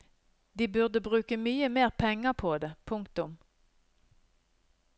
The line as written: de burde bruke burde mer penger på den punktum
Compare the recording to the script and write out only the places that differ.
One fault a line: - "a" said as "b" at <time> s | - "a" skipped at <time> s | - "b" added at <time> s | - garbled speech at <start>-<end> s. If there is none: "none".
- "burde" said as "mye" at 1.4 s
- "den" said as "det" at 2.6 s